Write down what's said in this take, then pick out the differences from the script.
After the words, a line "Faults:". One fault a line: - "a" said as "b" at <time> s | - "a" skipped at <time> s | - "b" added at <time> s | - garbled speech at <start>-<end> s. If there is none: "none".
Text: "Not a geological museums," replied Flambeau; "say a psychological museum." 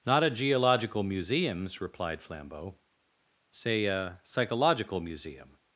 "Not a geological museums," replied Flambeau; "say a psychological museum."
Faults:
none